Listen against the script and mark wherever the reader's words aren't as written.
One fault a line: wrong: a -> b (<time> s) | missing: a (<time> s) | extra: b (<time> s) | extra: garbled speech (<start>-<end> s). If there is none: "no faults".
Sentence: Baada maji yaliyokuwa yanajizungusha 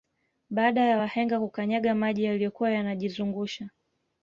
extra: ya wahenga kukanyaga (0.8 s)